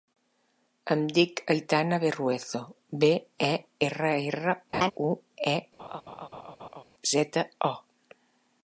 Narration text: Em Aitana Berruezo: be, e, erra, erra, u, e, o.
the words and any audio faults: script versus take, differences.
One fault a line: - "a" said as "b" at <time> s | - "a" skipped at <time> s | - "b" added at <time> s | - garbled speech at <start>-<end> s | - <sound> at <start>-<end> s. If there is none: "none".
- "dic" added at 1.2 s
- laugh at 4.7-4.9 s
- laugh at 5.8-6.8 s
- "zeta" added at 7.1 s